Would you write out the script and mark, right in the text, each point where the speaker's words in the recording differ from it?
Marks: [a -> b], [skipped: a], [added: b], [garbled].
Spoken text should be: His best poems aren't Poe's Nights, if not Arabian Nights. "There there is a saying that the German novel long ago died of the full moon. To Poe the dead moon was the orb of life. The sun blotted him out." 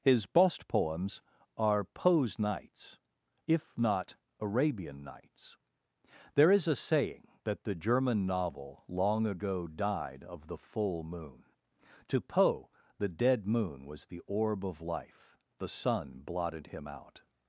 His best poems [aren't -> are] Poe's Nights, if not Arabian Nights. "There [skipped: there] is a saying that the German novel long ago died of the full moon. To Poe the dead moon was the orb of life. The sun blotted him out."